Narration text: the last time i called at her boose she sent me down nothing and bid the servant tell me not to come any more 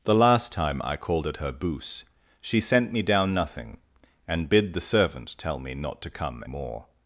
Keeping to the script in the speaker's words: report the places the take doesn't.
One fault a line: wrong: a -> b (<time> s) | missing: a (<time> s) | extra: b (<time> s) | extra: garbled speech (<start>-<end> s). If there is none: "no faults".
missing: any (6.4 s)